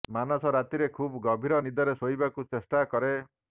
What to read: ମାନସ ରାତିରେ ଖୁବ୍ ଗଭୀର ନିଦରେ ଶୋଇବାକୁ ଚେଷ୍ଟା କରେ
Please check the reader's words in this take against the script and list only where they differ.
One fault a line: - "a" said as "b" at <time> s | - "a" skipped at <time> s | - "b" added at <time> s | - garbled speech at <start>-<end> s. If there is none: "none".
none